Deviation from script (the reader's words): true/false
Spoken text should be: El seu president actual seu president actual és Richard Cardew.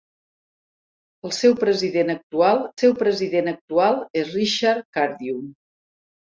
false